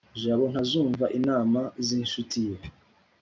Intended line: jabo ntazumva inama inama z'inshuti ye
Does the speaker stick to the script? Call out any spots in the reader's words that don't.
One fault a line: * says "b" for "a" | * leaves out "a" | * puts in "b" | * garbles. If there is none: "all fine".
* leaves out "inama"